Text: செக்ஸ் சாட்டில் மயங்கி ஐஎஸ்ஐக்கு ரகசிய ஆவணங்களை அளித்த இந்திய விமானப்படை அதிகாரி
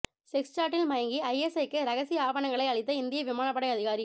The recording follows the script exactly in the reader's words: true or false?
true